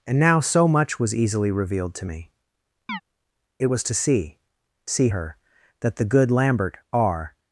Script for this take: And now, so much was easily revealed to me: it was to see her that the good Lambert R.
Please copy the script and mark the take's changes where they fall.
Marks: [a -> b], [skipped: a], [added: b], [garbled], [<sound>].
And now, so much was easily revealed to me: [chirp] it was to see [added: see] her that the good Lambert R.